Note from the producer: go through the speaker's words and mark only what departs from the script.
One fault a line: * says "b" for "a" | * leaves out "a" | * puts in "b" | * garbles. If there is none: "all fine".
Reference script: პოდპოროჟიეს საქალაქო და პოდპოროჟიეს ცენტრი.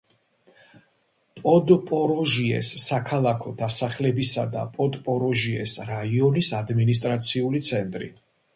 * puts in "დასახლებისა"
* puts in "რაიონის ადმინისტრაციული"